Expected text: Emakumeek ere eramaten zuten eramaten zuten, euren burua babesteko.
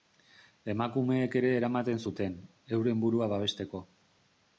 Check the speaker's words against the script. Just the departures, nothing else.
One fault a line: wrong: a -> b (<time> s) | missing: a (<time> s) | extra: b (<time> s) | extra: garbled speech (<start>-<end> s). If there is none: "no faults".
missing: eramaten zuten (2.4 s)